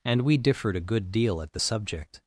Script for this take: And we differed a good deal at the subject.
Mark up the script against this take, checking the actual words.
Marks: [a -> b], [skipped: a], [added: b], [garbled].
And we differed a good deal at the subject.